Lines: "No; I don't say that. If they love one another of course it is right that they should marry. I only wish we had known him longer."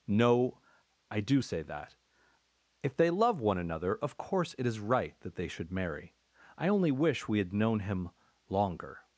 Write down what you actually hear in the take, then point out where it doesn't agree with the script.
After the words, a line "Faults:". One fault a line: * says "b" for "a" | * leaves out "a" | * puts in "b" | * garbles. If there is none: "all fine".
"No; I do say that. If they love one another of course it is right that they should marry. I only wish we had known him longer."
Faults:
* says "do" for "don't"